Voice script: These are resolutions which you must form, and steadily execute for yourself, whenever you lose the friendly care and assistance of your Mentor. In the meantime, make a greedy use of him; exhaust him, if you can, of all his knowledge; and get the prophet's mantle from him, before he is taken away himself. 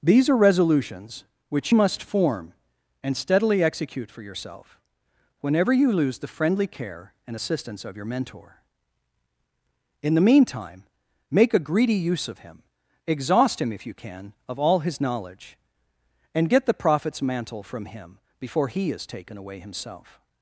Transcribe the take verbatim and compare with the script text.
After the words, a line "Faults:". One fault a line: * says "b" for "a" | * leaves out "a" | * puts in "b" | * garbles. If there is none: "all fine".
These are resolutions which must form, and steadily execute for yourself, whenever you lose the friendly care and assistance of your Mentor. In the meantime, make a greedy use of him; exhaust him, if you can, of all his knowledge; and get the prophet's mantle from him, before he is taken away himself.
Faults:
* leaves out "you"